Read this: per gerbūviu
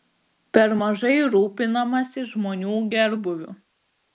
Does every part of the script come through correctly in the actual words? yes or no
no